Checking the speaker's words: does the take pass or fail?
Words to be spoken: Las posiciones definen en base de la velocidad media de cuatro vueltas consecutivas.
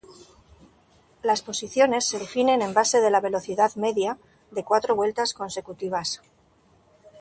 fail